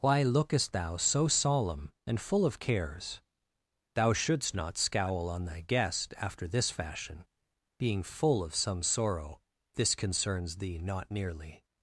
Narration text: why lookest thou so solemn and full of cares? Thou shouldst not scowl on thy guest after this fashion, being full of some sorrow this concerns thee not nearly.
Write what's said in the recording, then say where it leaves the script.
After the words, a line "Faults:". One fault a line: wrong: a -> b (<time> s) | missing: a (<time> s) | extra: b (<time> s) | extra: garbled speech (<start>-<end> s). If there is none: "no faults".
why lookest thou so solemn and full of cares? Thou shouldst not scowl on thy guest after this fashion, being full of some sorrow this concerns thee not nearly.
Faults:
no faults